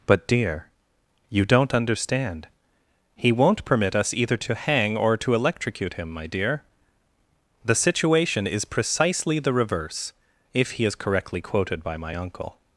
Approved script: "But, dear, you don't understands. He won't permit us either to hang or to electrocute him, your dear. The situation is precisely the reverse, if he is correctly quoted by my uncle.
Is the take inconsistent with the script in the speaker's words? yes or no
yes